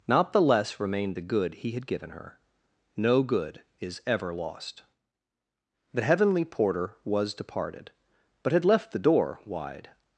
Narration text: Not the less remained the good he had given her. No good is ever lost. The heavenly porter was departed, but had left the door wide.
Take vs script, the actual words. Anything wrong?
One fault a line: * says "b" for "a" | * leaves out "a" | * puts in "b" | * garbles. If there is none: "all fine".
all fine